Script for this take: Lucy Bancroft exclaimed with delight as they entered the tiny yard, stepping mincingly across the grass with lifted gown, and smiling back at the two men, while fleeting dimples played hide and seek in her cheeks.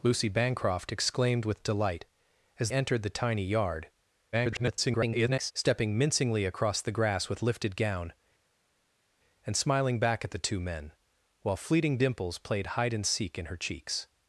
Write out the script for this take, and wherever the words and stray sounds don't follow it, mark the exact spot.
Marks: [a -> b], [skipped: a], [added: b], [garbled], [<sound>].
Lucy Bancroft exclaimed with delight as [skipped: they] entered the tiny yard, [garbled] stepping mincingly across the grass with lifted gown, and smiling back at the two men, while fleeting dimples played hide and seek in her cheeks.